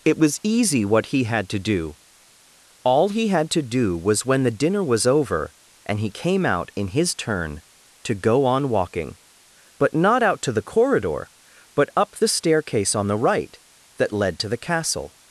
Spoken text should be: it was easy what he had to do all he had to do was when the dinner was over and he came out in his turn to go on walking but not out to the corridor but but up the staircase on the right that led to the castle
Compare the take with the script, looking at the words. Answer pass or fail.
fail